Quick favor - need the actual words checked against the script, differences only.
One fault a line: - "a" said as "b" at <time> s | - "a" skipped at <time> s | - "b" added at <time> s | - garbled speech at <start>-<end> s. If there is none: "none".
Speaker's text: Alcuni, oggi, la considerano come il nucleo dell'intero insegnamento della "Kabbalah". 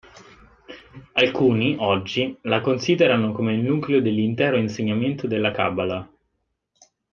none